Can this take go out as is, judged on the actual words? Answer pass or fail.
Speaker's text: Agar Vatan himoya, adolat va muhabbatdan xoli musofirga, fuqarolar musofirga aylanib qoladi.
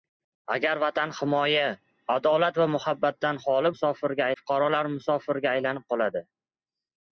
pass